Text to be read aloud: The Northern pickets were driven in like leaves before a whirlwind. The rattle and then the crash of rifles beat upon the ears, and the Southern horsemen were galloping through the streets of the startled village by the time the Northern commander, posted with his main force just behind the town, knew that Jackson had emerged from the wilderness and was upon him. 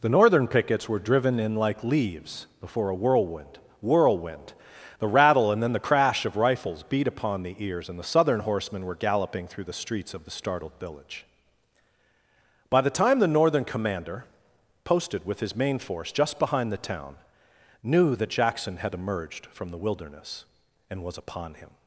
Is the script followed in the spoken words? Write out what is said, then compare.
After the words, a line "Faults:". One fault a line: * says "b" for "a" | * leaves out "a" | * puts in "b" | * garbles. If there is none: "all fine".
The Northern pickets were driven in like leaves before a whirlwind whirlwind. The rattle and then the crash of rifles beat upon the ears, and the Southern horsemen were galloping through the streets of the startled village by the time the Northern commander, posted with his main force just behind the town, knew that Jackson had emerged from the wilderness and was upon him.
Faults:
* puts in "whirlwind"